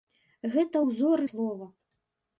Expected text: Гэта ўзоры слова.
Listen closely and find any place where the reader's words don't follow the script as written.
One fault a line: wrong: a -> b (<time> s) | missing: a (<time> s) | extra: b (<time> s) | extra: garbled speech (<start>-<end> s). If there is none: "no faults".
no faults